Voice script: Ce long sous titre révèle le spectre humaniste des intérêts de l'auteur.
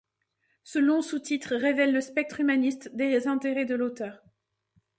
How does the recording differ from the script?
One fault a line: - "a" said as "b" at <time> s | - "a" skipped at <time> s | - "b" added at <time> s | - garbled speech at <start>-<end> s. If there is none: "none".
none